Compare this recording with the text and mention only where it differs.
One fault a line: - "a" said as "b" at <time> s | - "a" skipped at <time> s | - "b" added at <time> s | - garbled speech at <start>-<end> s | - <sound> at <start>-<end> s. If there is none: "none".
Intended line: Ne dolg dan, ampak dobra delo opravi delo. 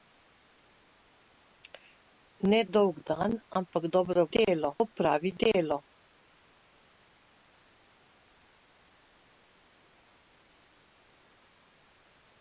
none